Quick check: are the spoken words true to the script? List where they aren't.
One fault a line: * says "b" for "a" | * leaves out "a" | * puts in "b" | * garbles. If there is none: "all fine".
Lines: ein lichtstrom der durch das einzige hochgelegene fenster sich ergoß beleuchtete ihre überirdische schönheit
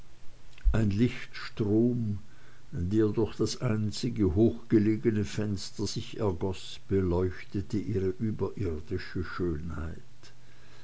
all fine